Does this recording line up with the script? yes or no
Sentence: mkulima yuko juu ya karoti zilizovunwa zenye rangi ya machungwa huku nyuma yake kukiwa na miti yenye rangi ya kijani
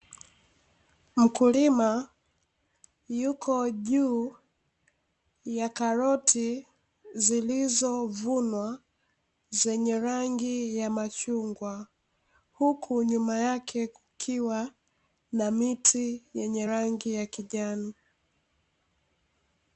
yes